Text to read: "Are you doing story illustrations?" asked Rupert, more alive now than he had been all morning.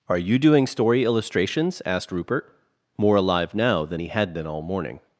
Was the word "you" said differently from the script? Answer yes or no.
no